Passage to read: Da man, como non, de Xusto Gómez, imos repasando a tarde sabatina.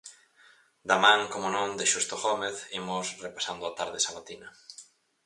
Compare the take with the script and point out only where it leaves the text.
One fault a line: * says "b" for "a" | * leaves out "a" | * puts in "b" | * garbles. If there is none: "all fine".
all fine